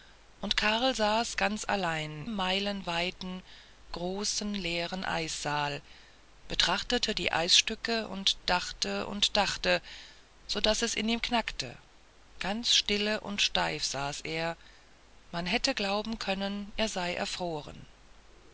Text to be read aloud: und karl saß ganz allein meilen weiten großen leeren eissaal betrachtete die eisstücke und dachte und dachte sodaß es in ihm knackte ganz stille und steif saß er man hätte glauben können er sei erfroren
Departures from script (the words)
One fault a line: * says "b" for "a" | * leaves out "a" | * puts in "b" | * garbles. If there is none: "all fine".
all fine